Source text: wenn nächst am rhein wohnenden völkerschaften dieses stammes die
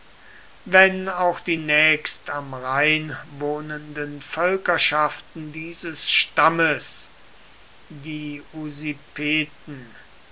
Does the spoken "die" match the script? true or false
true